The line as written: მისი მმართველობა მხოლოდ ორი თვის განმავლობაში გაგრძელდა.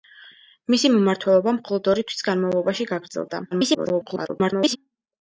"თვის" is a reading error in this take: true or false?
false